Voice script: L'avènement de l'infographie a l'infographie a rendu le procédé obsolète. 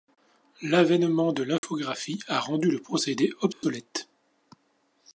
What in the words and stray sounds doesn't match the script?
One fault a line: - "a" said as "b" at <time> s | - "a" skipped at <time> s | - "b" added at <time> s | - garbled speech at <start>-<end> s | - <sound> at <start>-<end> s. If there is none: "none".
- dropout at 1.6-1.6 s
- "l'infographie a" skipped at 2.4 s
- dropout at 3.5-3.6 s